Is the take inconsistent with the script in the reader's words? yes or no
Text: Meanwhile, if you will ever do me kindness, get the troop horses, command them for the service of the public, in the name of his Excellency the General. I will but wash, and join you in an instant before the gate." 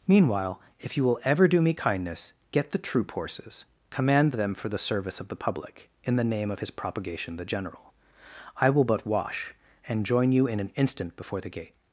yes